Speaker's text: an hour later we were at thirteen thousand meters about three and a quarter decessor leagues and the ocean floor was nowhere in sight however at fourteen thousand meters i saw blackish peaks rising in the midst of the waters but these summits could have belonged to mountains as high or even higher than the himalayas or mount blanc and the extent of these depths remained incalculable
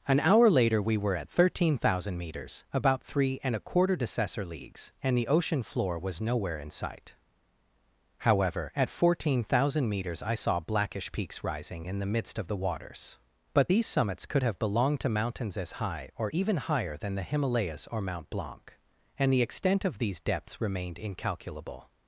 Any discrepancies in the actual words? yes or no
no